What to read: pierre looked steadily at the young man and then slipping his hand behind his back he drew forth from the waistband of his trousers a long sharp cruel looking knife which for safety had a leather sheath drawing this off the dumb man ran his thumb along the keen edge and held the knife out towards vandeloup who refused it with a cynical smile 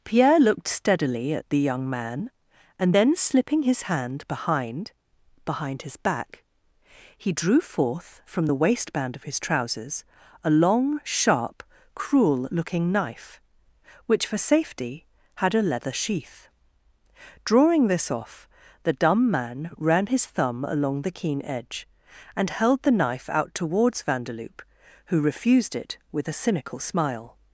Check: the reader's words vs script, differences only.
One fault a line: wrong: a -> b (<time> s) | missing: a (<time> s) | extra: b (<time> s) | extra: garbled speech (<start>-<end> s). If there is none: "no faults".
extra: behind (5.4 s)